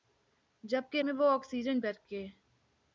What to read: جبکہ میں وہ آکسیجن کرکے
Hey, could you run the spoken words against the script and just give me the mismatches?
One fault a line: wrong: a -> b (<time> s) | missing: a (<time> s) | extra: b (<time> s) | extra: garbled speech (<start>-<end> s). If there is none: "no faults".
no faults